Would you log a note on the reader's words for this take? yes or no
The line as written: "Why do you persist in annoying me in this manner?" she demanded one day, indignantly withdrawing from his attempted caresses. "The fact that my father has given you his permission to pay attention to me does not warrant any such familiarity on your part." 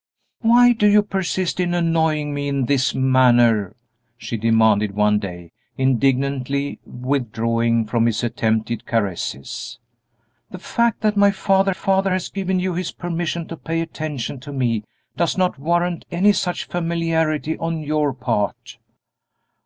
yes